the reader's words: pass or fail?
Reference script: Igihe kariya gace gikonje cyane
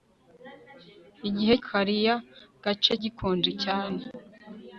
pass